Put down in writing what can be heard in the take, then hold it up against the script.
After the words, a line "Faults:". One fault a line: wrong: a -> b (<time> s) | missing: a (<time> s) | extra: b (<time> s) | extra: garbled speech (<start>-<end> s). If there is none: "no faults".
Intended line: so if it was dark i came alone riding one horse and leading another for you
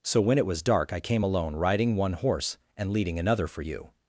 so when it was dark i came alone riding one horse and leading another for you
Faults:
wrong: if -> when (0.2 s)